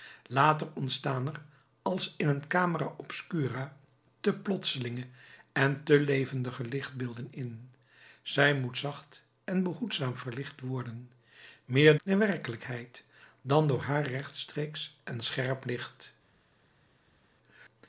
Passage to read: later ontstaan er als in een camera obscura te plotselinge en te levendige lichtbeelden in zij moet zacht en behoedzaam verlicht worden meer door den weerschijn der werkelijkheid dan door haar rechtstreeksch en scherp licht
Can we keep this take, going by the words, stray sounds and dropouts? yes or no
no